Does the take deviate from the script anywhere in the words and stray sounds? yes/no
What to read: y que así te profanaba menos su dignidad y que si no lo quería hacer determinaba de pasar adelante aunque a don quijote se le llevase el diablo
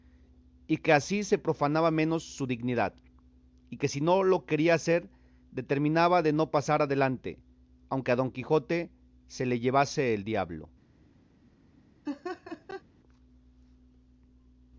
yes